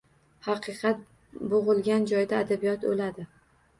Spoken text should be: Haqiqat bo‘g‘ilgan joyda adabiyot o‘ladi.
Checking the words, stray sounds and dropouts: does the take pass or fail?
pass